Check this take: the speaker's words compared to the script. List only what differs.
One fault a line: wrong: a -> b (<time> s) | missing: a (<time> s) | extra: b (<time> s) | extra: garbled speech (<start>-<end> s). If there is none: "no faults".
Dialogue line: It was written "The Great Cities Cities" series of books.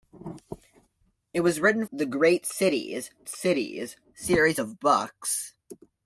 no faults